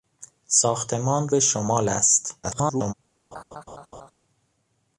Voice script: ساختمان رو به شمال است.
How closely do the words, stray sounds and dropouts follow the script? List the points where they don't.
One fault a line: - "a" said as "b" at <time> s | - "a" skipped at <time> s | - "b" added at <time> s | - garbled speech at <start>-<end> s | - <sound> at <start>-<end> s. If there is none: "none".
- "رو" skipped at 1.3 s
- garbled speech at 2.4-2.9 s
- laugh at 3.3-4.1 s